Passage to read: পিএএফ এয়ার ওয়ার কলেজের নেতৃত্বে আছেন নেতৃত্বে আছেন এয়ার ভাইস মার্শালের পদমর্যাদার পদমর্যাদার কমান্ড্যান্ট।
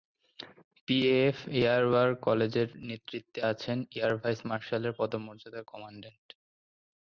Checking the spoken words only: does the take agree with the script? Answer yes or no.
no